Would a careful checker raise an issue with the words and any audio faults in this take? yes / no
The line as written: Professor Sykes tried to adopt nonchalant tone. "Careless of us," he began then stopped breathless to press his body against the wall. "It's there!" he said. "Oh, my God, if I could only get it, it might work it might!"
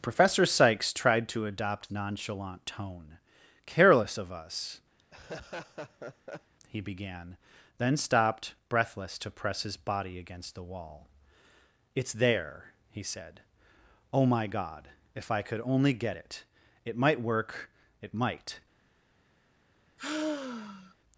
yes